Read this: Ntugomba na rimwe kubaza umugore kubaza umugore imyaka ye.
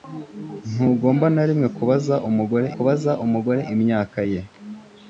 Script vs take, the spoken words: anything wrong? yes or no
no